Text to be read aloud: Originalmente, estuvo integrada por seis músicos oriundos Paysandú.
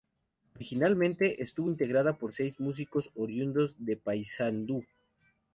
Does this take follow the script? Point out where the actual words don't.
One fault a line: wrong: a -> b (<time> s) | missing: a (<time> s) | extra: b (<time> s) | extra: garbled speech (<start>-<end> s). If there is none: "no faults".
extra: de (3.8 s)